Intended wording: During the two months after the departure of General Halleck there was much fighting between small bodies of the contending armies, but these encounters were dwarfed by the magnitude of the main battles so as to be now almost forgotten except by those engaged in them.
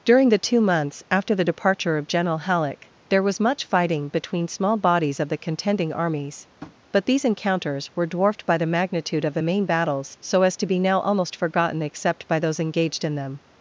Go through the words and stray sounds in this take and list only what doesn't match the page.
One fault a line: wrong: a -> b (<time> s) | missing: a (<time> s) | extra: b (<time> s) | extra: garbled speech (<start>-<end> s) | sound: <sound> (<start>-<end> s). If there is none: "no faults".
sound: tap (6.6-6.8 s)